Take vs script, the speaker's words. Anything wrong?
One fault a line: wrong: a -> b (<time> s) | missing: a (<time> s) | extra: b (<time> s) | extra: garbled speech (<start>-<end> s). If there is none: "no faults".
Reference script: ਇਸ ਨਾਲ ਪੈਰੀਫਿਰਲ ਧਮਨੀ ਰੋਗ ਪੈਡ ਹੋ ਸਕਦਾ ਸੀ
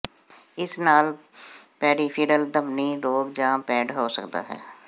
extra: ਜਾਂ (3.3 s)
wrong: ਸੀ -> ਹੈ (4.4 s)